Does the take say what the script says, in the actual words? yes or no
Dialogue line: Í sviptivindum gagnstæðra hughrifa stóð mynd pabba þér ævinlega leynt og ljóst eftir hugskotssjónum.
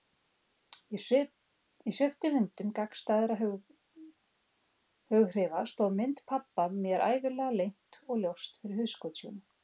no